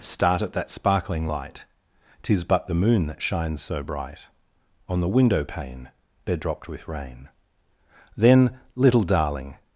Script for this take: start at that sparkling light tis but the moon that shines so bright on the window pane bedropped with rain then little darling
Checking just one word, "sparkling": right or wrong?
right